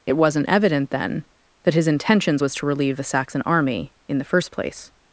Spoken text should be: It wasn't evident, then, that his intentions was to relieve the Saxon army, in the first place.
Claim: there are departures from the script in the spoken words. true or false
false